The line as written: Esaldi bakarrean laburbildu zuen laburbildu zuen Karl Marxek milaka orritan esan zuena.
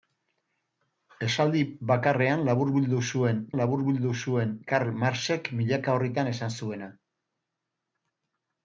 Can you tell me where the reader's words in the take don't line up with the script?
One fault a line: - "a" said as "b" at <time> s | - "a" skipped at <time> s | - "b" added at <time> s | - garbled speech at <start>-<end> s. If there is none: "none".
none